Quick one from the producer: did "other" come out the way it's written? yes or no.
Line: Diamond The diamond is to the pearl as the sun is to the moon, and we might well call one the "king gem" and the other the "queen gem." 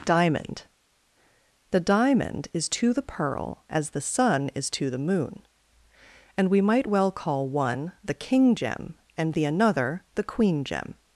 no